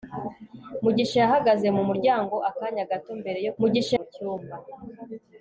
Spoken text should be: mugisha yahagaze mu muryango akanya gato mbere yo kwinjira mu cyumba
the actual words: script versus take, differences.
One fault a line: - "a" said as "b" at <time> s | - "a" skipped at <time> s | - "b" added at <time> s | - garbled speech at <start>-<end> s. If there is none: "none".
- "kwinjira" said as "mugisha" at 3.6 s